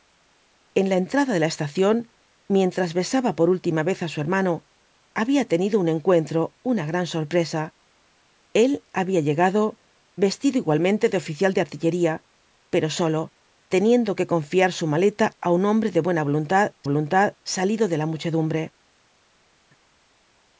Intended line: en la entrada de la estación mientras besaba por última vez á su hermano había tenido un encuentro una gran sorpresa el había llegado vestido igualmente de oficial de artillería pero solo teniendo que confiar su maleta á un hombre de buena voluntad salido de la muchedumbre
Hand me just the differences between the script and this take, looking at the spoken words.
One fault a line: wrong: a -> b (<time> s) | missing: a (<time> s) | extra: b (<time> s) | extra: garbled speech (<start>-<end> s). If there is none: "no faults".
extra: voluntad (16.9 s)